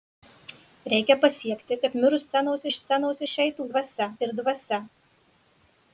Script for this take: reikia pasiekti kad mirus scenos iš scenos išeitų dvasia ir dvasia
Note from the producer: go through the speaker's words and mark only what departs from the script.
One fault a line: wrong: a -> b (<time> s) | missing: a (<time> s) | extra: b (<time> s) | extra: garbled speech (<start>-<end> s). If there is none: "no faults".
no faults